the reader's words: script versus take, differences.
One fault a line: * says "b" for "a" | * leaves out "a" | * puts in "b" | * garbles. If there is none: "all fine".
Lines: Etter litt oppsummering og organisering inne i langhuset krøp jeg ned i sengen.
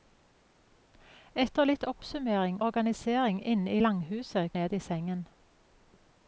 * leaves out "og"
* leaves out "krøp jeg"